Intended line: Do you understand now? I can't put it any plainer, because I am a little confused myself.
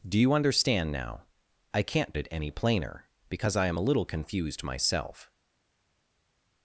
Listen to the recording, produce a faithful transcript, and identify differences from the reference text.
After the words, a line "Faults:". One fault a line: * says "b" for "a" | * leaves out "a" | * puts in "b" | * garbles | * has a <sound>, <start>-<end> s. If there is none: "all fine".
Do you understand now? I can't it any plainer, because I am a little confused myself.
Faults:
* leaves out "put"